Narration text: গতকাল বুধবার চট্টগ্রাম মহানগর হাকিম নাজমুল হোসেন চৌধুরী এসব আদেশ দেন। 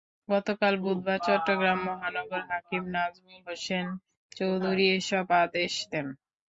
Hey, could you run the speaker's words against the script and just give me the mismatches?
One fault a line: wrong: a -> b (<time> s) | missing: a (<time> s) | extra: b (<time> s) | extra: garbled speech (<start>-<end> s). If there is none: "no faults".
no faults